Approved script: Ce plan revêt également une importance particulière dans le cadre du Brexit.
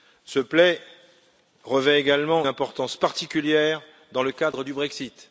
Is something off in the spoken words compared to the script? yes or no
yes